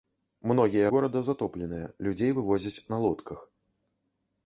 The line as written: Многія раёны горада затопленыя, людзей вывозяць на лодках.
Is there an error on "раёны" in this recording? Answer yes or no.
yes